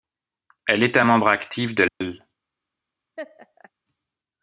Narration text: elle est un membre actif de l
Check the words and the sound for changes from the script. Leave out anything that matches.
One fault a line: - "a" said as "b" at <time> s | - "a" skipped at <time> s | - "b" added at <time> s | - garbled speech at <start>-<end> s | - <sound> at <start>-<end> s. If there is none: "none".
- dropout at 1.9-2.0 s
- laugh at 3.2-3.7 s